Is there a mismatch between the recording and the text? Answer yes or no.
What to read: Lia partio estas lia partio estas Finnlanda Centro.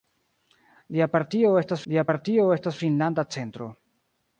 no